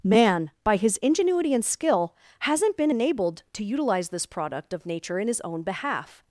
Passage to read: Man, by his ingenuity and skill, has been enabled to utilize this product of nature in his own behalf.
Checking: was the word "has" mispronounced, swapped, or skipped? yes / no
yes